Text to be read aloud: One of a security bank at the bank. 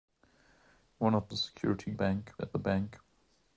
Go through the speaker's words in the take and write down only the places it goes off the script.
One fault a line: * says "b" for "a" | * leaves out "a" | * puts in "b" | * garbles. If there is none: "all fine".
all fine